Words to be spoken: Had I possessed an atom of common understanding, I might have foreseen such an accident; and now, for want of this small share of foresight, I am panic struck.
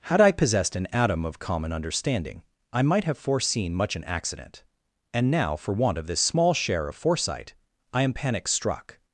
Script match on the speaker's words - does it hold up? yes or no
no